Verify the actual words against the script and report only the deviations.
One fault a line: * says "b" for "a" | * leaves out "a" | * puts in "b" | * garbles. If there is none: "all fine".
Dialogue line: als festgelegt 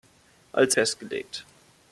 all fine